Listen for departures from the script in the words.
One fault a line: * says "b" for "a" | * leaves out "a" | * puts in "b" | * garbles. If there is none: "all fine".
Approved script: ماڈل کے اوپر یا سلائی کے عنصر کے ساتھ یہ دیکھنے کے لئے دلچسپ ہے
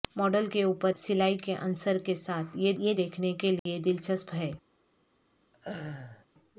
* leaves out "یا"
* puts in "یہ"